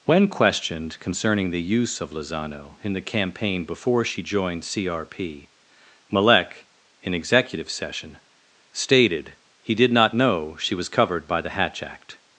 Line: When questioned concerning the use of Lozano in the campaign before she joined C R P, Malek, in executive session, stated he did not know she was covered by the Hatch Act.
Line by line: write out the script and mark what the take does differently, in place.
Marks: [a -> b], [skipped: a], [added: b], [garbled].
When questioned concerning the use of Lozano in the campaign before she joined C R P, Malek, in executive session, stated he did not know she was covered by the Hatch Act.